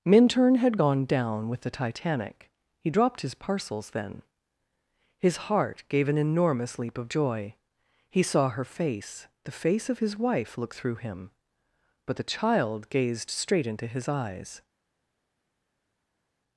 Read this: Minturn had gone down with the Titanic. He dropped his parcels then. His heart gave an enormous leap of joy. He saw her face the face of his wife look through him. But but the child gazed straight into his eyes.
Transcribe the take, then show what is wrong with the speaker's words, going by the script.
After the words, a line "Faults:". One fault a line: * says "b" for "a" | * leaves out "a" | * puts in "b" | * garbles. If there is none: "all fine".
Minturn had gone down with the Titanic. He dropped his parcels then. His heart gave an enormous leap of joy. He saw her face the face of his wife look through him. But the child gazed straight into his eyes.
Faults:
* leaves out "but"